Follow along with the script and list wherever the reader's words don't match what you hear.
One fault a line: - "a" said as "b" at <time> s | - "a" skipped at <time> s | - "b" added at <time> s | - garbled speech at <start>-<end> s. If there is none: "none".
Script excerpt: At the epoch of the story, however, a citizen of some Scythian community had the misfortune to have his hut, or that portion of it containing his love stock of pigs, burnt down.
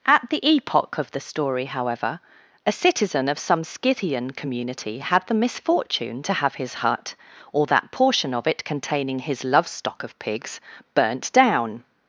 none